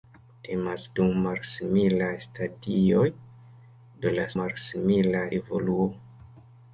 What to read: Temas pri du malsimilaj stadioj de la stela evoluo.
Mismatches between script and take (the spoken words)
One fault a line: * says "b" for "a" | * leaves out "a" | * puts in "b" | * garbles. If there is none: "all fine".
* leaves out "pri"
* says "malsimilaj" for "stela"